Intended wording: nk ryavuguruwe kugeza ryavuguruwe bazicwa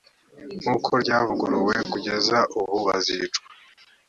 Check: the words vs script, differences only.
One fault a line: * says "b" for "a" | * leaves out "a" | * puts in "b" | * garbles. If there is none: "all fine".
* puts in "uko"
* says "ubu" for "ryavuguruwe"